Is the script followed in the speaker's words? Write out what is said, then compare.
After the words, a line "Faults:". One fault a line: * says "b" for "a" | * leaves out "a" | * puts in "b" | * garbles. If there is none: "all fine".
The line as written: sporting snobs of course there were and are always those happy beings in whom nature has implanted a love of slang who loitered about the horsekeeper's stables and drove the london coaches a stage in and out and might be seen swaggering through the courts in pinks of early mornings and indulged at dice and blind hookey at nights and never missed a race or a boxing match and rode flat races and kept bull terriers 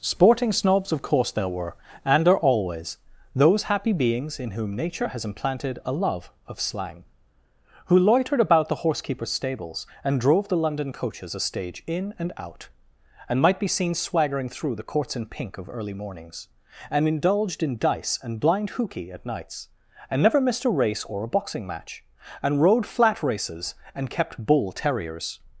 sporting snobs of course there were and are always those happy beings in whom nature has implanted a love of slang who loitered about the horsekeeper's stables and drove the london coaches a stage in and out and might be seen swaggering through the courts in pink of early mornings and indulged in dice and blind hookey at nights and never missed a race or a boxing match and rode flat races and kept bull terriers
Faults:
* says "pink" for "pinks"
* says "in" for "at"